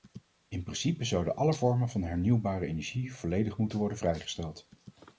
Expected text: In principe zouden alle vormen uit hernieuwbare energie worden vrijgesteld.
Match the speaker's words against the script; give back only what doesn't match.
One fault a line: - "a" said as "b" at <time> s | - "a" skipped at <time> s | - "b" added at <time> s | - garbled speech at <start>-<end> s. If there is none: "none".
- "uit" said as "van" at 1.9 s
- "volledig moeten" added at 3.1 s